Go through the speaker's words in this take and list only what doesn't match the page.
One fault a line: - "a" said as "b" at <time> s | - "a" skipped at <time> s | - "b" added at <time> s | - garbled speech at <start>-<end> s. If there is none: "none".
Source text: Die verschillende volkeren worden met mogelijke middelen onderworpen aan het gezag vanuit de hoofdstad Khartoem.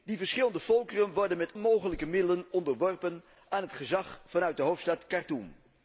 none